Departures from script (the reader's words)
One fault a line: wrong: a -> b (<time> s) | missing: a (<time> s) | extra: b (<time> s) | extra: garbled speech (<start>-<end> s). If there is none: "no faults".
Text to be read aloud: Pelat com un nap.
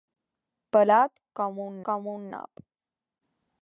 extra: com un (1.9 s)